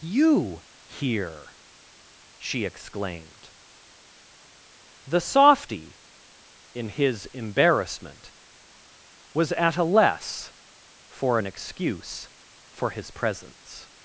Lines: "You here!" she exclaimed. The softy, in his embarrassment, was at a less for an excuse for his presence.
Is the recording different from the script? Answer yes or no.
no